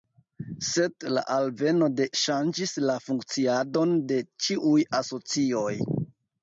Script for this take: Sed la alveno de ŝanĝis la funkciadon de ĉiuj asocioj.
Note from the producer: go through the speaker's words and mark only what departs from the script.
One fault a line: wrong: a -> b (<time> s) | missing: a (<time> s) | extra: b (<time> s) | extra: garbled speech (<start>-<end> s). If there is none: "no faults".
no faults